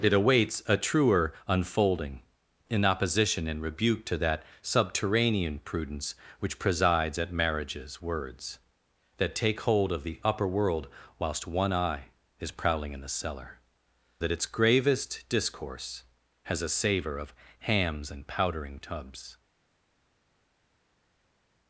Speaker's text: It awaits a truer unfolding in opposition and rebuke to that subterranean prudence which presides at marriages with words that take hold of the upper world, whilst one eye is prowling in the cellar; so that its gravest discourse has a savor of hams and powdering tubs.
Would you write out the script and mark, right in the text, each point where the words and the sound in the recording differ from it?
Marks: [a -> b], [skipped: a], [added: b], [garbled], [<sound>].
It awaits a truer unfolding in opposition and rebuke to that subterranean prudence which presides at marriages [skipped: with] words that take hold of the upper world, whilst one eye is prowling in the cellar; [skipped: so] that its gravest discourse has a savor of hams and powdering tubs.